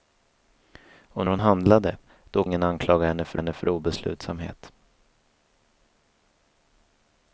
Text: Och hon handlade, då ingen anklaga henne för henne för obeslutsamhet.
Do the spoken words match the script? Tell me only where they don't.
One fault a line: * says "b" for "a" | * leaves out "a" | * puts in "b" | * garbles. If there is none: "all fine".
all fine